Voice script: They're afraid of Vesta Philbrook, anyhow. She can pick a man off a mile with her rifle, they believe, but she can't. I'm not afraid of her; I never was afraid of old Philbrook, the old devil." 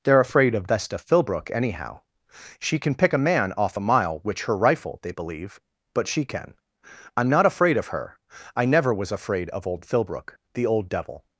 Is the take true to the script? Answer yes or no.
no